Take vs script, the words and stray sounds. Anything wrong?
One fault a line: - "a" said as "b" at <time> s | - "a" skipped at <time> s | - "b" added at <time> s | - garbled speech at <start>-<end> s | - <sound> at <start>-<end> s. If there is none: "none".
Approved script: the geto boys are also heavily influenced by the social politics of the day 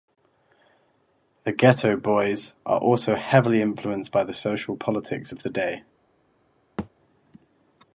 - thud at 6.8-6.9 s